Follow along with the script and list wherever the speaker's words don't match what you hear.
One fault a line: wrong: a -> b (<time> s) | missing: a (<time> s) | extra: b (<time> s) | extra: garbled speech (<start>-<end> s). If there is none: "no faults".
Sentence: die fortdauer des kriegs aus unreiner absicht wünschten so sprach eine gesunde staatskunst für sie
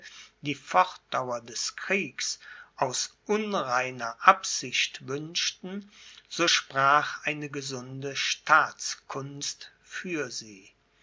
no faults